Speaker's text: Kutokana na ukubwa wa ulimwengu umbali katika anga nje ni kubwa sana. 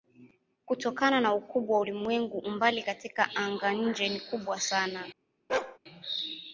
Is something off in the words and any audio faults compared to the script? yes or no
yes